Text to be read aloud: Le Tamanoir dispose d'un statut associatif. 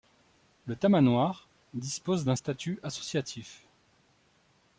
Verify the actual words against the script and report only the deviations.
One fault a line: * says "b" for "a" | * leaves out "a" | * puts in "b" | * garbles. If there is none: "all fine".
all fine